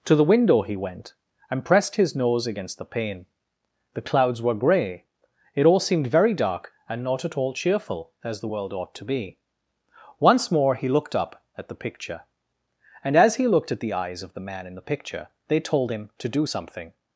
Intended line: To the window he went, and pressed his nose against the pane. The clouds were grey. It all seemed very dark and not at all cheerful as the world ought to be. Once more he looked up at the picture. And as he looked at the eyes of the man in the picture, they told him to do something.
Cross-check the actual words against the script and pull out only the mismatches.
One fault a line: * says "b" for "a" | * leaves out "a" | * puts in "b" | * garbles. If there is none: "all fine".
all fine